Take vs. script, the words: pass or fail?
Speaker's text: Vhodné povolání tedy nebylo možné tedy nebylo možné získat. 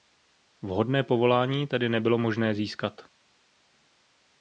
fail